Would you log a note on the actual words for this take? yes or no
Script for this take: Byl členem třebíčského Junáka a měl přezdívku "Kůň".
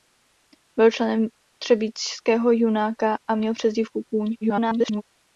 yes